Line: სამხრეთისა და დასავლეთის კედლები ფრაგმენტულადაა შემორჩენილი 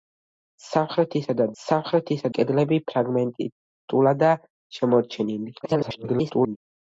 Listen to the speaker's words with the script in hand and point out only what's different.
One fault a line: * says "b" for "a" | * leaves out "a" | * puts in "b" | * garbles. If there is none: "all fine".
* says "სამხრეთისა" for "დასავლეთის"
* garbles